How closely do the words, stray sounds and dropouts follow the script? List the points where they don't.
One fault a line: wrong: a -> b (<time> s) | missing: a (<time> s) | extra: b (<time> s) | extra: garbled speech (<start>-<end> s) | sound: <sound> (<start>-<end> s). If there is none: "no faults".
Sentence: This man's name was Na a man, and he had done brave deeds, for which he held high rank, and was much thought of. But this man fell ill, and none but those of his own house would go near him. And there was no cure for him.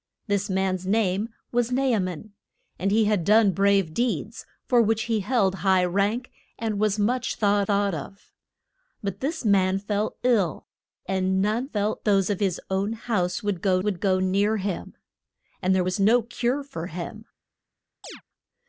extra: thought (7.6 s)
wrong: but -> fell (11.6 s)
extra: would go (13.8 s)
sound: chirp (18.0-18.2 s)